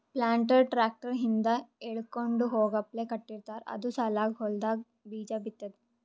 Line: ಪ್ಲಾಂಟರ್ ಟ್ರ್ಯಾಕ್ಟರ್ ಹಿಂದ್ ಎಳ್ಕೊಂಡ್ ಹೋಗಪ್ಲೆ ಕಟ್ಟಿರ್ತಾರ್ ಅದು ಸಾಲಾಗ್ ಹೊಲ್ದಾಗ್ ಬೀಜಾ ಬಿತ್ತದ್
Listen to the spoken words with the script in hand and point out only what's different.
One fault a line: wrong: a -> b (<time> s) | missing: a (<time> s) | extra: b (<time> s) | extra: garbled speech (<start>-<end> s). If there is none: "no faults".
no faults